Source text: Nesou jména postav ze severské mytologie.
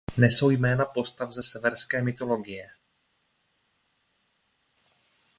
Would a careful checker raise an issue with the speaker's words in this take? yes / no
no